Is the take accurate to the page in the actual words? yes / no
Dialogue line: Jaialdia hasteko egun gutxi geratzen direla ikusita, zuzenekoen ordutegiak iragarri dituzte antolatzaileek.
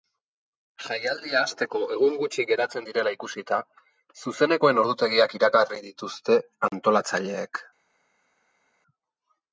yes